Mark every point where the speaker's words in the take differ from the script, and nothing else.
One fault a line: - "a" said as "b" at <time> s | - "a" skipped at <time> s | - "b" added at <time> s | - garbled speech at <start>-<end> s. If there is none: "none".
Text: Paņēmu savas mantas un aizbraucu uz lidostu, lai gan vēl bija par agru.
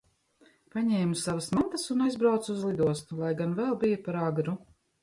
none